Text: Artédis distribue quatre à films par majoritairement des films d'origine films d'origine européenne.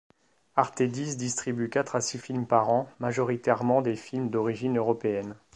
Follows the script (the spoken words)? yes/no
no